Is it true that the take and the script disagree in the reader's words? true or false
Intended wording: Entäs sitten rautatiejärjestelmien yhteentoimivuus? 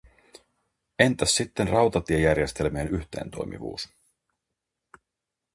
false